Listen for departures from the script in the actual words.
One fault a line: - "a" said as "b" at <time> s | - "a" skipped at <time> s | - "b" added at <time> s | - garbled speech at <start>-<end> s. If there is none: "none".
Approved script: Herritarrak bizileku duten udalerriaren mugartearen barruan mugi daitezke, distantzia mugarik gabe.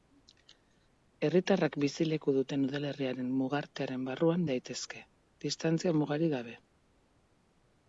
- "mugi" skipped at 4.5 s